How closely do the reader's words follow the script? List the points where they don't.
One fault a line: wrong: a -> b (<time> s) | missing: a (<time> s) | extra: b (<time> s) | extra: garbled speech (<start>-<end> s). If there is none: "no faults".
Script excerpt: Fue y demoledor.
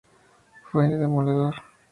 no faults